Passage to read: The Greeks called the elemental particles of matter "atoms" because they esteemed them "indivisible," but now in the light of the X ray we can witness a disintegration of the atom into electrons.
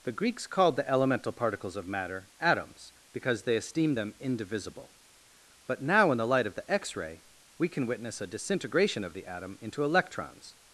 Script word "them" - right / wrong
right